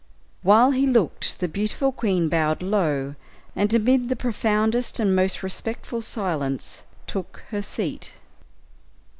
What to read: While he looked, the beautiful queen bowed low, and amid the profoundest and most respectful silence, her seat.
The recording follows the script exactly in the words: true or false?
false